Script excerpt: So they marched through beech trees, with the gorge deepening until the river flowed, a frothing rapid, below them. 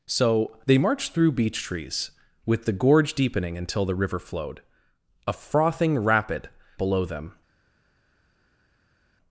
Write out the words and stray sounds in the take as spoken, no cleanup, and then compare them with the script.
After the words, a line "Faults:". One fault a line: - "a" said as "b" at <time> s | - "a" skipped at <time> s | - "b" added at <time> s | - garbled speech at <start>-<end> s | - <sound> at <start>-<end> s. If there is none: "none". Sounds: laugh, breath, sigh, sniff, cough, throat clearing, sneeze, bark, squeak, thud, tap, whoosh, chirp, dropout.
So they marched through beech trees, with the gorge deepening until the river flowed, a frothing rapid, below them.
Faults:
none